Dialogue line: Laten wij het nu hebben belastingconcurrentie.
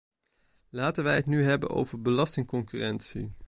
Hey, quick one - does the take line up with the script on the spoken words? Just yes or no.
no